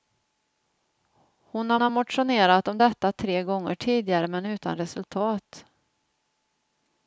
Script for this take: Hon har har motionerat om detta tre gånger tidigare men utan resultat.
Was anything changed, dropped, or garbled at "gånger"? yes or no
no